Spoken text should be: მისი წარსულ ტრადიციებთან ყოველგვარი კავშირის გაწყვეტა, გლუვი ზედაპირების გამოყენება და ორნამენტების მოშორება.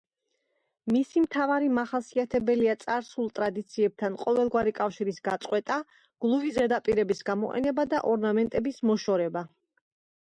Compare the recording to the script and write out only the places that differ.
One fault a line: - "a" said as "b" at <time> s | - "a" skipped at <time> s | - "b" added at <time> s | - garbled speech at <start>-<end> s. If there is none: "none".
- "მთავარი მახასიათებელია" added at 1.2 s